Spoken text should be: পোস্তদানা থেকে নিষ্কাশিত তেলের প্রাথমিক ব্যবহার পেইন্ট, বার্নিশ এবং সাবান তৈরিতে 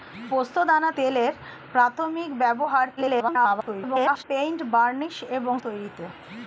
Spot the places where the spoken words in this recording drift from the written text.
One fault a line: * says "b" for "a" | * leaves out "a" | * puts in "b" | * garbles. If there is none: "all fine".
* leaves out "থেকে নিষ্কাশিত"
* garbles
* leaves out "সাবান"